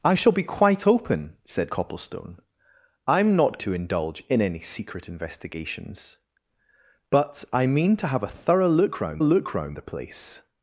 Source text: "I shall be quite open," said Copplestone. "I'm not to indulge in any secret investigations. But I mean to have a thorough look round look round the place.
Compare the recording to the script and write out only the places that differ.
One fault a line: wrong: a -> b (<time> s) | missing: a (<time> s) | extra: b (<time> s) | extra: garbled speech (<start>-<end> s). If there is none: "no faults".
no faults